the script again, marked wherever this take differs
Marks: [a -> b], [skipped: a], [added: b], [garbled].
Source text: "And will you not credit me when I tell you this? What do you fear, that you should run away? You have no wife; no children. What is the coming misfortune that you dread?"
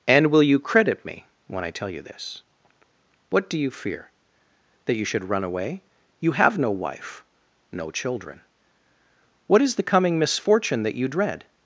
"And will you [skipped: not] credit me when I tell you this? What do you fear, that you should run away? You have no wife; no children. What is the coming misfortune that you dread?"